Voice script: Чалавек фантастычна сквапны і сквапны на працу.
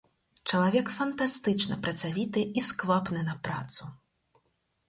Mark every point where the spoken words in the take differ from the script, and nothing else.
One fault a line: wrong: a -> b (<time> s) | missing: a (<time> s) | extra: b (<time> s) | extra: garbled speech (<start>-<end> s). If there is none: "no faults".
wrong: сквапны -> працавіты (1.9 s)